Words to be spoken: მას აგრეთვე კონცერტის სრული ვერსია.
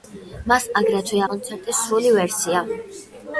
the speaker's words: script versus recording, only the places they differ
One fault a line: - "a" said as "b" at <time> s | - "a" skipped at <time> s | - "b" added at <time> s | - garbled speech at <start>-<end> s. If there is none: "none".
none